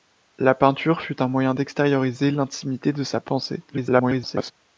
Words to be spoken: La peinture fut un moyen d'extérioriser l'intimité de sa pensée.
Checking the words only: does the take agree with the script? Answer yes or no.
no